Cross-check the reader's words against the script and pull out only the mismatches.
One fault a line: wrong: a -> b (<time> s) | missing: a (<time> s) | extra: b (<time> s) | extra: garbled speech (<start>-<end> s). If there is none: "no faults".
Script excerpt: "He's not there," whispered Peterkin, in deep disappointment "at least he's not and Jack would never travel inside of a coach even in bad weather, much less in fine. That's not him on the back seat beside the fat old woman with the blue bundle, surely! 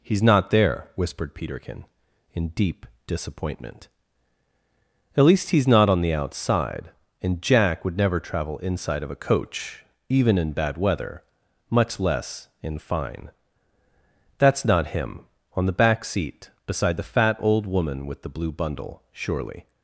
extra: on the outside (5.9 s)